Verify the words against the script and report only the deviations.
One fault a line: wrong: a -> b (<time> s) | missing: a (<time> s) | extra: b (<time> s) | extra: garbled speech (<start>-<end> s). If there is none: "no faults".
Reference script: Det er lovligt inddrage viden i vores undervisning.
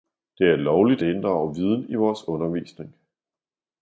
no faults